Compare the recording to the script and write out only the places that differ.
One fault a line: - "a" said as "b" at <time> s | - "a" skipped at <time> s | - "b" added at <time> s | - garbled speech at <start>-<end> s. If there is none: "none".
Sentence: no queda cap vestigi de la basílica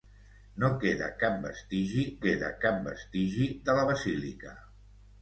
- "queda cap vestigi" added at 2.2 s